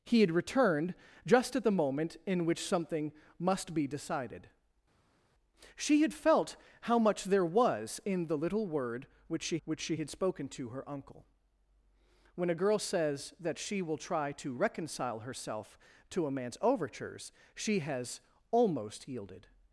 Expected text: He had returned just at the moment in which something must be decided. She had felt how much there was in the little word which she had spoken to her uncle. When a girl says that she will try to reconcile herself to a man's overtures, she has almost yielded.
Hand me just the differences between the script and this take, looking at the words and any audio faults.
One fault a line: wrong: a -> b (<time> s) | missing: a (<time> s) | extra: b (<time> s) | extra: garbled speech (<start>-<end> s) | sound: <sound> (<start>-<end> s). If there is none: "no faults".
extra: which she (9.6 s)